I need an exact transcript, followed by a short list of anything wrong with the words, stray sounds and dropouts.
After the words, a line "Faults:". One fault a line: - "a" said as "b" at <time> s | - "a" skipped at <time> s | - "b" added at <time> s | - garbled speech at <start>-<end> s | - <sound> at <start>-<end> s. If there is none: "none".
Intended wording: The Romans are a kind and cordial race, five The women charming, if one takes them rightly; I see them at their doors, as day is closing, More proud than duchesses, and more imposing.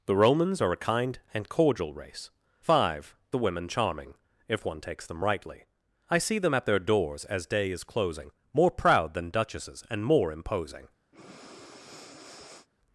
The Romans are a kind and cordial race, five The women charming, if one takes them rightly; I see them at their doors, as day is closing, More proud than duchesses, and more imposing.
Faults:
- breath at 11.1-12.7 s